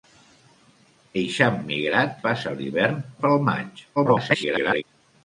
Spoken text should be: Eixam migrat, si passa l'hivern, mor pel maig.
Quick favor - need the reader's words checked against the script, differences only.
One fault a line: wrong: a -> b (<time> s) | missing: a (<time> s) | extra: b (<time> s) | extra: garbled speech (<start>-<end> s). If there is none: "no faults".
missing: si (2.2 s)
missing: mor (3.0 s)
extra: garbled speech (4.0-4.8 s)